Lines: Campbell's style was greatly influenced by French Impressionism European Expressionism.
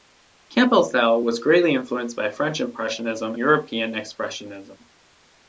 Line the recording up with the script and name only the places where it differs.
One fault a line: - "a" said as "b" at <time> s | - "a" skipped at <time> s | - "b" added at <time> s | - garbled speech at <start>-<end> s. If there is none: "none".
none